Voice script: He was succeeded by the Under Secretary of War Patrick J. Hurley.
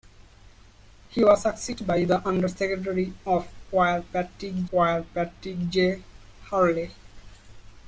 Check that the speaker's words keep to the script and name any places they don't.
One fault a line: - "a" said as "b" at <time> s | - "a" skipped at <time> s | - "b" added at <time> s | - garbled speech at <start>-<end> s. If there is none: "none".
- "War Patrick" added at 4.7 s